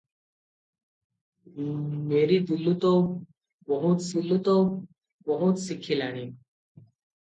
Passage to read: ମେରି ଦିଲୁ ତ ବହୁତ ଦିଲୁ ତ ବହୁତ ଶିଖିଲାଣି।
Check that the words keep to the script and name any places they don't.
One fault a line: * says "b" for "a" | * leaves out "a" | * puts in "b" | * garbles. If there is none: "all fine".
all fine